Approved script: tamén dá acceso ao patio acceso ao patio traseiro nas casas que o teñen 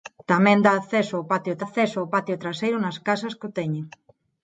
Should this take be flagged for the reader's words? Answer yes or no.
no